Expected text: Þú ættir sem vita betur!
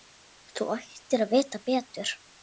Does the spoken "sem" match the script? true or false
false